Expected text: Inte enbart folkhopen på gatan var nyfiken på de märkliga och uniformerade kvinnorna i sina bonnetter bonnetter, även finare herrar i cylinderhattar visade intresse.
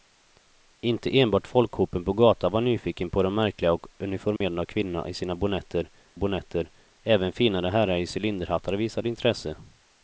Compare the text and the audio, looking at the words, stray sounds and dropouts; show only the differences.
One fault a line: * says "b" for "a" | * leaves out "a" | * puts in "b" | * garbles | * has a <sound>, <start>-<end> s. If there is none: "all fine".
* has a dropout, 4.4-4.4 s